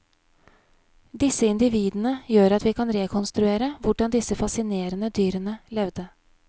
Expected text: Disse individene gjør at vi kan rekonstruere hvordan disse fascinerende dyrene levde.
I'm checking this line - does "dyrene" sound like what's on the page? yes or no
yes